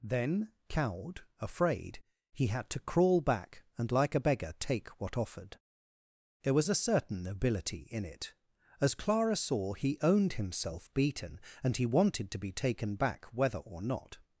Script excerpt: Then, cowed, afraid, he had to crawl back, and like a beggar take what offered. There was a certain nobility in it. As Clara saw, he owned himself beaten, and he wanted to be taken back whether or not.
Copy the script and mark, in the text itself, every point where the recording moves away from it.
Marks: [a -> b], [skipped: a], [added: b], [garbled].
Then, cowed, afraid, he had to crawl back, and like a beggar take what offered. There was a certain nobility in it. As Clara saw, he owned himself beaten, and he wanted to be taken back whether or not.